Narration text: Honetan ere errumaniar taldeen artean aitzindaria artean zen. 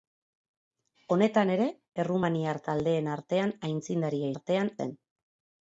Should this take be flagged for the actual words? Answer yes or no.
no